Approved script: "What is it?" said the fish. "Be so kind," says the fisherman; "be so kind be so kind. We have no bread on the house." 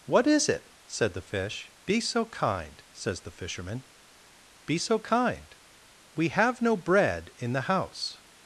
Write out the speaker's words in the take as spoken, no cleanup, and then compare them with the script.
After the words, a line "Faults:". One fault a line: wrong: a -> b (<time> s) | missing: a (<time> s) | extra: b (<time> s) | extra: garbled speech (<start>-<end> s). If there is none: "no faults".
"What is it?" said the fish. "Be so kind," says the fisherman; "be so kind. We have no bread in the house."
Faults:
missing: be so kind (5.5 s)
wrong: on -> in (7.4 s)